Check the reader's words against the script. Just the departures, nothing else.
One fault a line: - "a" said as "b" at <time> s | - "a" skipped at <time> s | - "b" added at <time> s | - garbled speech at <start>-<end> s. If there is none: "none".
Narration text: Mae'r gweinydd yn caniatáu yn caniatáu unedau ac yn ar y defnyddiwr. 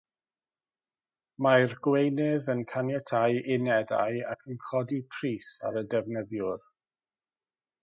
- "yn caniatáu" skipped at 3.4 s
- "codi pris" added at 4.7 s